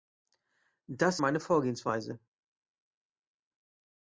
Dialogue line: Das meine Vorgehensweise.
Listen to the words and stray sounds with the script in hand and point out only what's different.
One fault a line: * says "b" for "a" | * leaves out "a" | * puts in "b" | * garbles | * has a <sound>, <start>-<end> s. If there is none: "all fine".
all fine